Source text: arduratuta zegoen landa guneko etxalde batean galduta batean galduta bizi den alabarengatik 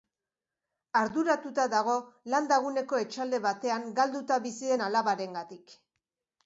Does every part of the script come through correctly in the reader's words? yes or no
no